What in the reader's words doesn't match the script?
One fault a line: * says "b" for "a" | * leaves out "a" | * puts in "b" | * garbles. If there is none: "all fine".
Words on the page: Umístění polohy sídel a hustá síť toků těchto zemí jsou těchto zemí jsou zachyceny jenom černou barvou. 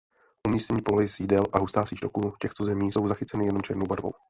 * leaves out "těchto zemí jsou"